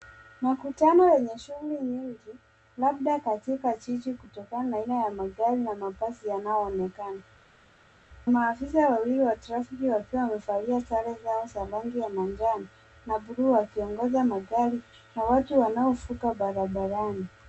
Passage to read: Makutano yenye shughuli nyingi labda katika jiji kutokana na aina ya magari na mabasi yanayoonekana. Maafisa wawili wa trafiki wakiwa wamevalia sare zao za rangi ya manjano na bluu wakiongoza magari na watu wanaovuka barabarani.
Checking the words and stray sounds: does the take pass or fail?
pass